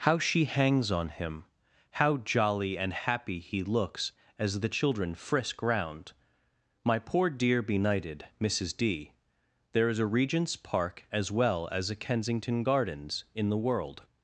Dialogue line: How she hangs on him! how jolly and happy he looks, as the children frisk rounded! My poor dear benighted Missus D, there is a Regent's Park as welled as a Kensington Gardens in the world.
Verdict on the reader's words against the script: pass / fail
fail